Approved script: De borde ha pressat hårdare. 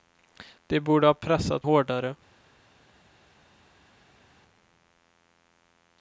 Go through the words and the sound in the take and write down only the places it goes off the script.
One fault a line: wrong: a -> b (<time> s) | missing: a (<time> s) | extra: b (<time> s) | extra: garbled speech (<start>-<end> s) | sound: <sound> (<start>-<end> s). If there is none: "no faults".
no faults